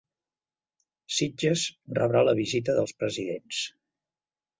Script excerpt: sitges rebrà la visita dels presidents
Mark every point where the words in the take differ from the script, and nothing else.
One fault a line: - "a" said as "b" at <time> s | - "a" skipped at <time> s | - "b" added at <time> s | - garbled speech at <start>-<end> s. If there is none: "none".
none